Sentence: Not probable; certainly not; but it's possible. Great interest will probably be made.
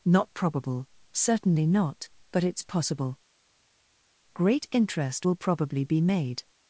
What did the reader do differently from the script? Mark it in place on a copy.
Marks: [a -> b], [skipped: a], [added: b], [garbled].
Not probable; certainly not; but it's possible. Great interest will probably be made.